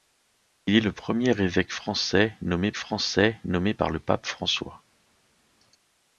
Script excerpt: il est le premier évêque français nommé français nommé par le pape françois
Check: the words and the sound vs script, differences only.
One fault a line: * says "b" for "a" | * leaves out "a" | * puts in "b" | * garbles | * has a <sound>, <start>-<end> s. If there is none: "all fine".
all fine